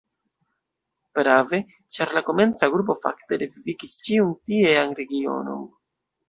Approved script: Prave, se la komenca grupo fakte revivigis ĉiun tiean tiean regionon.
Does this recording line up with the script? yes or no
no